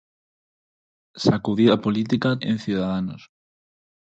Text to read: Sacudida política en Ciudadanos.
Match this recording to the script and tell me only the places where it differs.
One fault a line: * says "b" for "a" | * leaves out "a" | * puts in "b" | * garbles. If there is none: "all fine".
all fine